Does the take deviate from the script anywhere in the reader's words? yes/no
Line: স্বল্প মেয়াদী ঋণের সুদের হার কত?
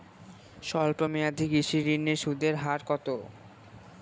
yes